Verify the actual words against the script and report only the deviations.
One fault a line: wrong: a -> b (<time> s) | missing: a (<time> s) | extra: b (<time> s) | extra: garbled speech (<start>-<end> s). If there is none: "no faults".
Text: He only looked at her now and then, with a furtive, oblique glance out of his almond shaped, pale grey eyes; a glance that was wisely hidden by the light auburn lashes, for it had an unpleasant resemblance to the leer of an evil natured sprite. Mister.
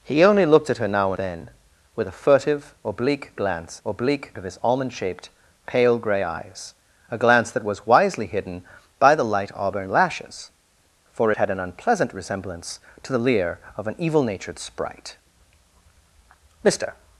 missing: and (1.1 s)
wrong: out -> oblique (3.9 s)